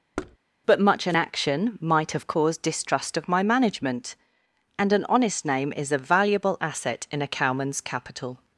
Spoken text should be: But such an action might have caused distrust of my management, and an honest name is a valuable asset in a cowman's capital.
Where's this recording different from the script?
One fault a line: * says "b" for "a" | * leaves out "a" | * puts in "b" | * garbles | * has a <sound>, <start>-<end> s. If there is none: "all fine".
* has a thud, 0.2-0.4 s
* says "much" for "such"